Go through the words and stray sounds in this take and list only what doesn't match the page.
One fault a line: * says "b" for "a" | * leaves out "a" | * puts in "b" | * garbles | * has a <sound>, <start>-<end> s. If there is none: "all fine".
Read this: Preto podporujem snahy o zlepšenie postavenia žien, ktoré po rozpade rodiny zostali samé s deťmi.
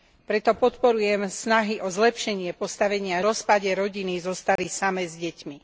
* leaves out "žien ktoré po"
* has a dropout, 4.6-4.6 s